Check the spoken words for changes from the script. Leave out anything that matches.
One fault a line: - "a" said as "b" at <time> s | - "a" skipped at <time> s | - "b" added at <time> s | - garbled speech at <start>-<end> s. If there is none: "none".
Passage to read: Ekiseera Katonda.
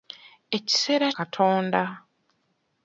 none